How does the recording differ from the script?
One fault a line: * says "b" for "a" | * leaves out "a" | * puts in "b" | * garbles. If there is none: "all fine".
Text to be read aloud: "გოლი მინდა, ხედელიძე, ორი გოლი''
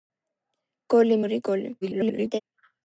* leaves out "მინდა ხედელიძე"
* garbles